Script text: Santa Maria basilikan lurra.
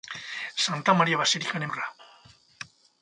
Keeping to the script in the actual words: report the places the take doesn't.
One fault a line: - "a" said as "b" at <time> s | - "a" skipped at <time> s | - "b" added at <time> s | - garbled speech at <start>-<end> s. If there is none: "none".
none